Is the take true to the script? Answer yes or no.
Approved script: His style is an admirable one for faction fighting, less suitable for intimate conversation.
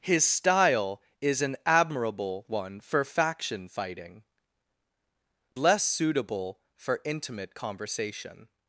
yes